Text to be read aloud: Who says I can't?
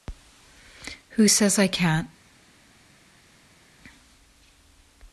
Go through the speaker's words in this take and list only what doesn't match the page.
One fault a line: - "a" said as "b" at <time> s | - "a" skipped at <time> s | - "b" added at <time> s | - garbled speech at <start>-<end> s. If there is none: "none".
none